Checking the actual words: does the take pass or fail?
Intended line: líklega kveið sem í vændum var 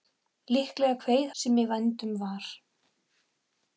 pass